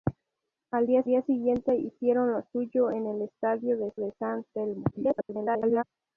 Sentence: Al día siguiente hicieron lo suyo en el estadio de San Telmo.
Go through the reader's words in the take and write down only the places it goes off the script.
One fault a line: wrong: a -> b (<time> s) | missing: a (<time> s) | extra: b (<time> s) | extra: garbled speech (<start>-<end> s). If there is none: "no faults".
extra: día (1.0 s)
extra: de (4.0 s)
extra: garbled speech (4.9-5.8 s)